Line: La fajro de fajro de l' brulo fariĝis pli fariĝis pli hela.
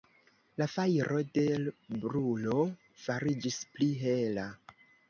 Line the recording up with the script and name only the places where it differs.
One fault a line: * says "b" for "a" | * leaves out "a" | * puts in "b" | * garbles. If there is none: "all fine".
* leaves out "fajro de"
* leaves out "fariĝis pli"